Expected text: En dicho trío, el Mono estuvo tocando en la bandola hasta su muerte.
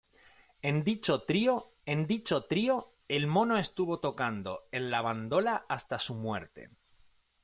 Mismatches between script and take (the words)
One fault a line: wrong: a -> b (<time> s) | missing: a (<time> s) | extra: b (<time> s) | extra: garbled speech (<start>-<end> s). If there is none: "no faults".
extra: en dicho trío (1.9 s)